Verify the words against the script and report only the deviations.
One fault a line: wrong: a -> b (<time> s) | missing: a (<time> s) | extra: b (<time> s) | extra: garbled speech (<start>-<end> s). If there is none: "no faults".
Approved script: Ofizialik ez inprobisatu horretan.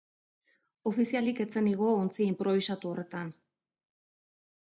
extra: zen igo ontzi (1.5 s)